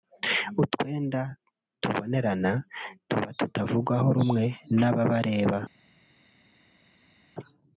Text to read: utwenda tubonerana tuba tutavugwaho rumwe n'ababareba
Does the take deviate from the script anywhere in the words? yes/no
no